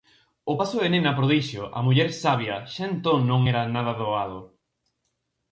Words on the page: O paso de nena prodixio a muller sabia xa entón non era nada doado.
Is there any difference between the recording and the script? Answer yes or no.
no